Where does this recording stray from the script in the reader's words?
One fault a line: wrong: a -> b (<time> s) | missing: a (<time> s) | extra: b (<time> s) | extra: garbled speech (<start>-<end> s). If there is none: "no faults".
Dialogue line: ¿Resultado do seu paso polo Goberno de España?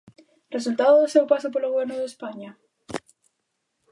no faults